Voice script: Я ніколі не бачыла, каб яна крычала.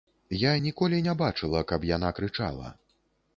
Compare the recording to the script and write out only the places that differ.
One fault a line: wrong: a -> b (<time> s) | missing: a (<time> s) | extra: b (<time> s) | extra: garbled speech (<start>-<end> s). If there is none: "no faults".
no faults